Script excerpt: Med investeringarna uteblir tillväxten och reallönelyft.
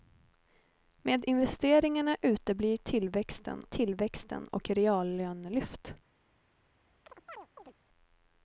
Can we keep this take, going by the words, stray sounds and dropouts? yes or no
no